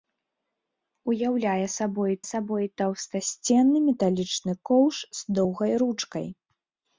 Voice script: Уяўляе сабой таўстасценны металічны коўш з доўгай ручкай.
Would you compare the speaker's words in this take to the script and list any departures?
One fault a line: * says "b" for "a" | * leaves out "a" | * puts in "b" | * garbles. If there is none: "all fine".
* puts in "сабой"